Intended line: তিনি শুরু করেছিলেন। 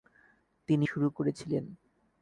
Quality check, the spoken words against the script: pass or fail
pass